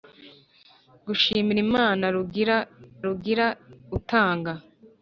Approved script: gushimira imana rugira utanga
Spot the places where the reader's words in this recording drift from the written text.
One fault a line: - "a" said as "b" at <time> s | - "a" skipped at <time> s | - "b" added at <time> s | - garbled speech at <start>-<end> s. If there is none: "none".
- "rugira" added at 3.1 s